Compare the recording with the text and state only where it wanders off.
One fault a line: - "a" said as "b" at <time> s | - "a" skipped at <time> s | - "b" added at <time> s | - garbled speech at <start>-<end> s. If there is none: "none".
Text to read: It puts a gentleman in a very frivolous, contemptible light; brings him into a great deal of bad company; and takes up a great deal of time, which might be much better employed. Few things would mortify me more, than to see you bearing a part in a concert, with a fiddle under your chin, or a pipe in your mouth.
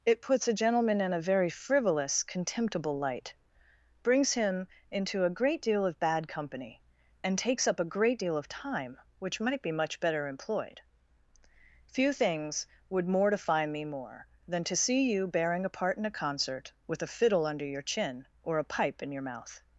none